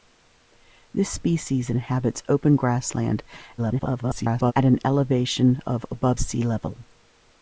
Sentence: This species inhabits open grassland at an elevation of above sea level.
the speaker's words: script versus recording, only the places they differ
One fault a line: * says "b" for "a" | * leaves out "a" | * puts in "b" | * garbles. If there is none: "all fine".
* garbles